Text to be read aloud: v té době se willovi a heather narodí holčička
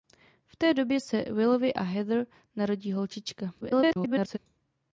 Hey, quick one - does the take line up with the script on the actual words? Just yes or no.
no